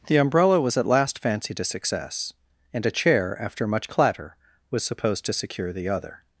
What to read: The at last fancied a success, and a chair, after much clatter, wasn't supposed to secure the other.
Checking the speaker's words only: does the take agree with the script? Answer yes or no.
no